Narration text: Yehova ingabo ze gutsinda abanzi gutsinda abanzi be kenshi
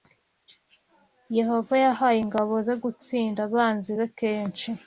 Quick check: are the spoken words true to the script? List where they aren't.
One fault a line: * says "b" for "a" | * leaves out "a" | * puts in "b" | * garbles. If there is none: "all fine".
* puts in "yahaye"
* leaves out "gutsinda abanzi"